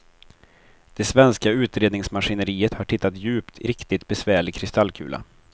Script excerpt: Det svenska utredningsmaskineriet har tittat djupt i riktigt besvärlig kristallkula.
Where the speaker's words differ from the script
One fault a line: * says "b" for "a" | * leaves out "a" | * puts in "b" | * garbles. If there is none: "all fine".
all fine